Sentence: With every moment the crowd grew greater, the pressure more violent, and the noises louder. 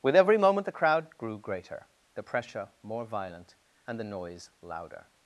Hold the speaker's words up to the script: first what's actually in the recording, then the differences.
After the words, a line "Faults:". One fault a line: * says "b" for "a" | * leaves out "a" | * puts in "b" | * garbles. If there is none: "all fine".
With every moment the crowd grew greater, the pressure more violent, and the noise louder.
Faults:
* says "noise" for "noises"